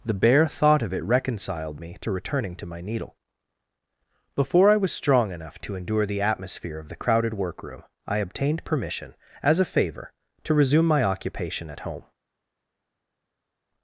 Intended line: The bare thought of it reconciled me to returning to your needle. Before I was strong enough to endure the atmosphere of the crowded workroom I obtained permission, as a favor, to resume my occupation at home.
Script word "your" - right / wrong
wrong